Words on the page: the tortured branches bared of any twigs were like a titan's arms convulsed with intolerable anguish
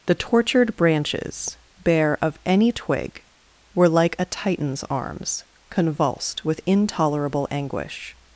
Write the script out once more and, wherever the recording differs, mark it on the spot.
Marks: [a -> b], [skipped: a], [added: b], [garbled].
the tortured branches [bared -> bare] of any [twigs -> twig] were like a titan's arms convulsed with intolerable anguish